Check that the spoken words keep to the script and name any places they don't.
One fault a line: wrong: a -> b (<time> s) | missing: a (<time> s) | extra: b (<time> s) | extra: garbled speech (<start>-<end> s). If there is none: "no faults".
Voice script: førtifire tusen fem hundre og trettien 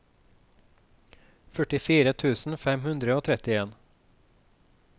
no faults